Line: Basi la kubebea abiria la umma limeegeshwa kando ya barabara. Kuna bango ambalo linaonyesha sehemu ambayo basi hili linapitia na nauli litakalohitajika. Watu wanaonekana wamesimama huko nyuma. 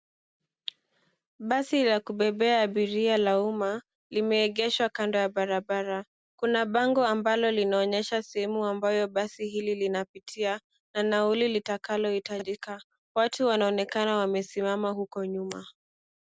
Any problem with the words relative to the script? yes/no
no